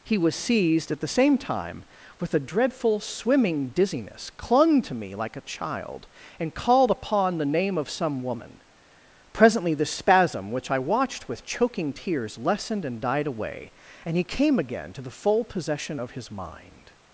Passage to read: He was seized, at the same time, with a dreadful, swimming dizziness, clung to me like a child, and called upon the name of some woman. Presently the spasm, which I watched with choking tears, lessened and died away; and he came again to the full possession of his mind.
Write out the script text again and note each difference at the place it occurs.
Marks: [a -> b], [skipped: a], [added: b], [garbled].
He was seized, at the same time, with a dreadful, swimming dizziness, clung to me like a child, and called upon the name of some woman. Presently the spasm, which I watched with choking tears, lessened and died away; and he came again to the full possession of his mind.